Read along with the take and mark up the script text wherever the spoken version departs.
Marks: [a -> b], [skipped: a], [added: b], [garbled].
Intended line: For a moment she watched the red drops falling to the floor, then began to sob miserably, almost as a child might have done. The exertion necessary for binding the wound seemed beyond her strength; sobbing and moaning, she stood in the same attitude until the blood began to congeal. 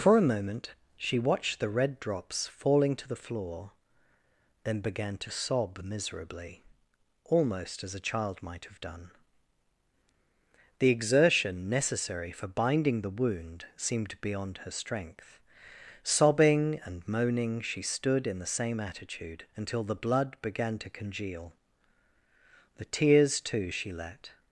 For a moment she watched the red drops falling to the floor, then began to sob miserably, almost as a child might have done. The exertion necessary for binding the wound seemed beyond her strength; sobbing and moaning, she stood in the same attitude until the blood began to congeal. [added: The tears too she let]